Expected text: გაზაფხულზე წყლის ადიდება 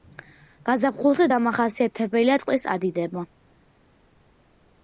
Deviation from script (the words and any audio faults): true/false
true